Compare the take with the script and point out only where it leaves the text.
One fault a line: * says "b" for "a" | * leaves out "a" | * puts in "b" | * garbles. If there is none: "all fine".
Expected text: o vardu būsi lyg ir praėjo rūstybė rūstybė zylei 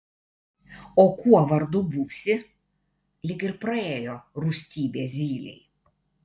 * puts in "kuo"
* leaves out "rūstybė"